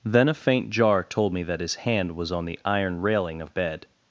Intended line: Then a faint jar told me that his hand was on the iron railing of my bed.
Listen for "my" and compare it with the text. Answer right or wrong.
wrong